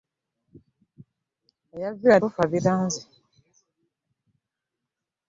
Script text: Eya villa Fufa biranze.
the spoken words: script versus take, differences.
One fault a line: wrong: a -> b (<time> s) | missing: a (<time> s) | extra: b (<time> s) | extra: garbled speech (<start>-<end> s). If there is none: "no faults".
no faults